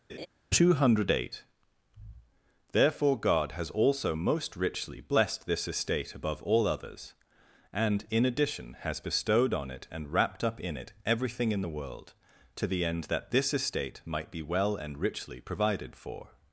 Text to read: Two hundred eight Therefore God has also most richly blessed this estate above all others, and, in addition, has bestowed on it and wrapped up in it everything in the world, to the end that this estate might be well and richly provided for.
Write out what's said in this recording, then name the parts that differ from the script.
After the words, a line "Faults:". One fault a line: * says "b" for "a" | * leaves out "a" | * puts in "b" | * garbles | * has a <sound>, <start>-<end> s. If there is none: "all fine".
Two hundred eight Therefore God has also most richly blessed this estate above all others, and, in addition, has bestowed on it and wrapped up in it everything in the world, to the end that this estate might be well and richly provided for.
Faults:
* has a laugh, 0.1-0.3 s